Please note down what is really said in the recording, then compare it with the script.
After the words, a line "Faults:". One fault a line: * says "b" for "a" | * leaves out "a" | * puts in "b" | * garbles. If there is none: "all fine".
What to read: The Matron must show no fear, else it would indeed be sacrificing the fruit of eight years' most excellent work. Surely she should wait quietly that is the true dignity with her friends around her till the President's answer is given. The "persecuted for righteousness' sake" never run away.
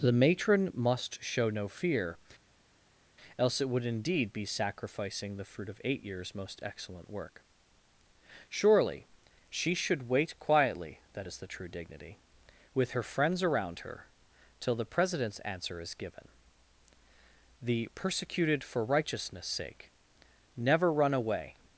The Matron must show no fear, else it would indeed be sacrificing the fruit of eight years' most excellent work. Surely she should wait quietly that is the true dignity with her friends around her till the President's answer is given. The "persecuted for righteousness' sake" never run away.
Faults:
all fine